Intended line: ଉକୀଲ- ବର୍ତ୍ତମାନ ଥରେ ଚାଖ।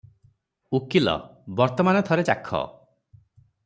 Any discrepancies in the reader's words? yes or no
no